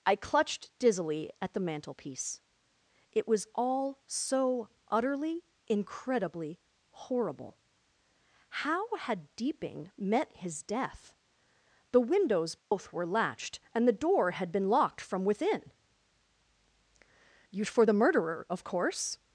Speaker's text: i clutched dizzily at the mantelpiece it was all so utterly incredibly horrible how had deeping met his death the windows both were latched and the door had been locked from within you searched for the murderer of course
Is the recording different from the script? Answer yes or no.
yes